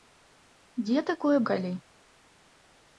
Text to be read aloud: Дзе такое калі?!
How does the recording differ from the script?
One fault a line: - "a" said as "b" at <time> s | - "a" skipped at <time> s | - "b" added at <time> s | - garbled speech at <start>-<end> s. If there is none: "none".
none